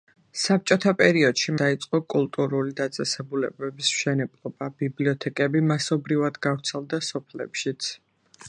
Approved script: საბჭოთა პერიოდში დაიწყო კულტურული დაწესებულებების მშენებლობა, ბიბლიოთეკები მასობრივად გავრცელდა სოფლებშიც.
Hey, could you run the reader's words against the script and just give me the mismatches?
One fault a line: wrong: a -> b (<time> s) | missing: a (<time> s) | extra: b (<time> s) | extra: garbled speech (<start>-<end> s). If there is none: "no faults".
no faults